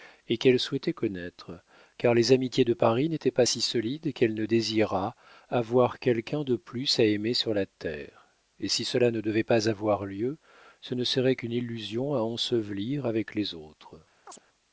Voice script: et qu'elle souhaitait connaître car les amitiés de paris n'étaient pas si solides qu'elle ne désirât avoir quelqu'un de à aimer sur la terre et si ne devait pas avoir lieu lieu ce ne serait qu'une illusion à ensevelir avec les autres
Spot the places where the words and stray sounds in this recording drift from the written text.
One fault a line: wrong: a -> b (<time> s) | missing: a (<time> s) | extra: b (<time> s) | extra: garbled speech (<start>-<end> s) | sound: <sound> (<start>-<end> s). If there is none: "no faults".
extra: plus (6.6 s)
extra: cela (8.8 s)
missing: lieu (10.4 s)
sound: chirp (14.3-14.4 s)